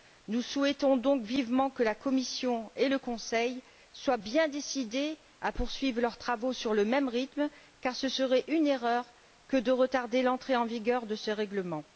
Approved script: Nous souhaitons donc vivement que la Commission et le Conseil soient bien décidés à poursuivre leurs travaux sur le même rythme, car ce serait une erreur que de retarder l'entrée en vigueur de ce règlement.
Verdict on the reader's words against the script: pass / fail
pass